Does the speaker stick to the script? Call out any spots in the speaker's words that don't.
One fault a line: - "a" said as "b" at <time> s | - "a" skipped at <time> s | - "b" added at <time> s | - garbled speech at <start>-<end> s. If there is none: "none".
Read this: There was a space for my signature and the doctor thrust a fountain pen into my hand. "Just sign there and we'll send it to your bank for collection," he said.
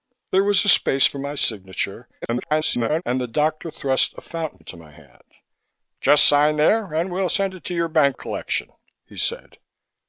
- garbled speech at 2.2-3.0 s
- "pen" skipped at 4.6 s
- "for" skipped at 8.2 s